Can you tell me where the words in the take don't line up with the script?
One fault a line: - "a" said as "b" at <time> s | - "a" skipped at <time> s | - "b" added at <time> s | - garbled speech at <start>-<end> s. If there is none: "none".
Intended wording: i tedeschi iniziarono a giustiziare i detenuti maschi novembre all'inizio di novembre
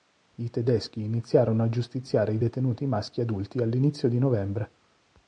- "novembre" said as "adulti" at 3.2 s